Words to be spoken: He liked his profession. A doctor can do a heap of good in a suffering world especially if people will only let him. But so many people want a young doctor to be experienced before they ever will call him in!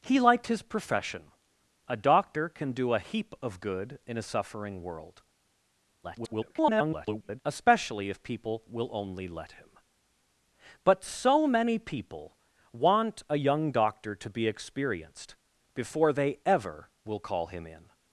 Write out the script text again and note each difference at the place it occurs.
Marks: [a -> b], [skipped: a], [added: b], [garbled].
He liked his profession. A doctor can do a heap of good in a suffering world [garbled] especially if people will only let him. But so many people want a young doctor to be experienced before they ever will call him in!